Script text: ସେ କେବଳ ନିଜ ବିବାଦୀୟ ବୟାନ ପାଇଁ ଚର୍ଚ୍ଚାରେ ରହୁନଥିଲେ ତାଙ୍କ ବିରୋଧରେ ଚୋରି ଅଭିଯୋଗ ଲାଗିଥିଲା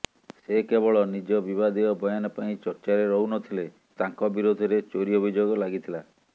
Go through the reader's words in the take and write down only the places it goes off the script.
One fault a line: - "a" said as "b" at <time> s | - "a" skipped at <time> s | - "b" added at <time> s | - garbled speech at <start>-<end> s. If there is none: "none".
none